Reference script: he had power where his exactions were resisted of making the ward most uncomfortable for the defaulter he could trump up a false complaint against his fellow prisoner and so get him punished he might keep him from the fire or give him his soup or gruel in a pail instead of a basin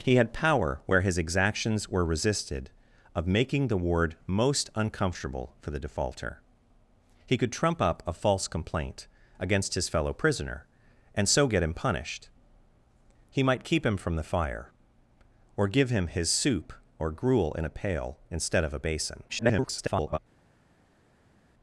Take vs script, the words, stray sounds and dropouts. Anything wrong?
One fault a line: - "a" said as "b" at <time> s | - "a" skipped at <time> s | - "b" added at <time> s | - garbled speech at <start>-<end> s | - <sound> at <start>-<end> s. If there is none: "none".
- garbled speech at 19.3-20.2 s